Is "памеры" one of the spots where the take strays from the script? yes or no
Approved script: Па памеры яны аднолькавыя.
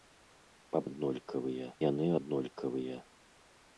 yes